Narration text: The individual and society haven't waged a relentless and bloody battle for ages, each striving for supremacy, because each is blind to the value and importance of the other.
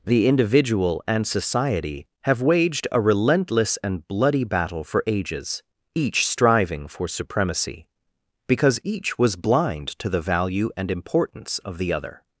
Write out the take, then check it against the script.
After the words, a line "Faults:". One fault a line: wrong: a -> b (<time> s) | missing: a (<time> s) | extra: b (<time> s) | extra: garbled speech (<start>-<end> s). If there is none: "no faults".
The individual and society have waged a relentless and bloody battle for ages, each striving for supremacy, because each was blind to the value and importance of the other.
Faults:
wrong: haven't -> have (2.2 s)
wrong: is -> was (9.2 s)